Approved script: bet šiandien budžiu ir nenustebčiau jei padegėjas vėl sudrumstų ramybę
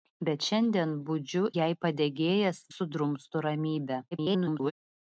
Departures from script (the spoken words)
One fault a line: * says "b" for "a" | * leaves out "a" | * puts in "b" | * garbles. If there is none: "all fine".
* leaves out "ir nenustebčiau"
* leaves out "vėl"
* garbles